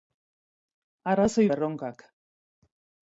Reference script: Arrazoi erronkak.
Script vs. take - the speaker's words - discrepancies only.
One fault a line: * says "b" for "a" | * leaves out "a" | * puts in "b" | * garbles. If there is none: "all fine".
all fine